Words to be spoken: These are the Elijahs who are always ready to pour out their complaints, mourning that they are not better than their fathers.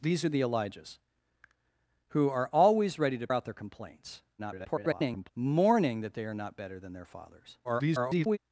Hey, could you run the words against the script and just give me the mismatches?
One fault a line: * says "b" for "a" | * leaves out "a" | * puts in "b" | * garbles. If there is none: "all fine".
* leaves out "pour"
* garbles
* garbles